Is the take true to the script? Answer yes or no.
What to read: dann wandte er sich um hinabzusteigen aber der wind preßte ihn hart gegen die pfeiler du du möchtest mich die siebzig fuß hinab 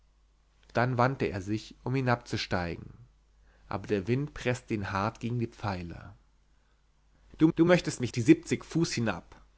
yes